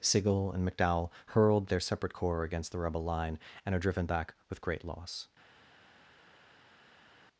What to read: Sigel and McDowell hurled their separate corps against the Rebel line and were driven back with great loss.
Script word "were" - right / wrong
wrong